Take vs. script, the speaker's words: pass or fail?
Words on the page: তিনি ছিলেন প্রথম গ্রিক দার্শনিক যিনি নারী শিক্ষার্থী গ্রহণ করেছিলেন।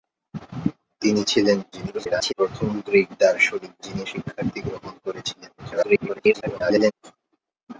fail